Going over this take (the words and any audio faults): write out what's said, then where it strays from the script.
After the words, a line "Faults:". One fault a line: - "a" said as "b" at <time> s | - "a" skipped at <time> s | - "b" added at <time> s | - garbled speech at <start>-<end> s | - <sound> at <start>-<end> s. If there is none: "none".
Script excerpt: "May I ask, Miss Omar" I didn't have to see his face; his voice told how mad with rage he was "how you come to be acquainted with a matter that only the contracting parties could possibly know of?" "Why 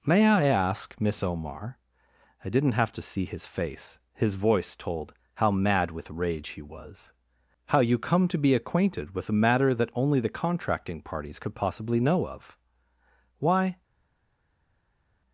"May I ask, Miss Omar" I didn't have to see his face; his voice told how mad with rage he was "how you come to be acquainted with a matter that only the contracting parties could possibly know of?" "Why
Faults:
none